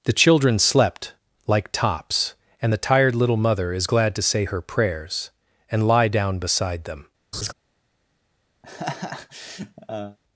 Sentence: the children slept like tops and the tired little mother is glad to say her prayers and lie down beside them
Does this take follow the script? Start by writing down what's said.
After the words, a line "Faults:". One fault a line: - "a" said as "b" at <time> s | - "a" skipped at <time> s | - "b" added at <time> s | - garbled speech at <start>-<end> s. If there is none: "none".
the children slept like tops and the tired little mother is glad to say her prayers and lie down beside them
Faults:
none